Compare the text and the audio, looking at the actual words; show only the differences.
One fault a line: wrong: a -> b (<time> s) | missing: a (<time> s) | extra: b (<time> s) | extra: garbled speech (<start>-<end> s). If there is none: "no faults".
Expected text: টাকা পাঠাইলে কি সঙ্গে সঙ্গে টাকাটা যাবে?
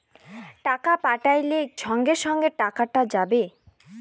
missing: কি (1.6 s)